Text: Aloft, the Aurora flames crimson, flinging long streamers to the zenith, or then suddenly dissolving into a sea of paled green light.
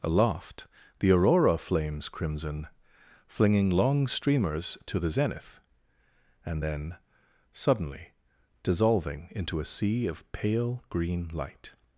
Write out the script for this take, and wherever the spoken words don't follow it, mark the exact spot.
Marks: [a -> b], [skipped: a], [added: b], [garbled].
Aloft, the Aurora flames crimson, flinging long streamers to the zenith, [or -> and] then suddenly dissolving into a sea of [paled -> pale] green light.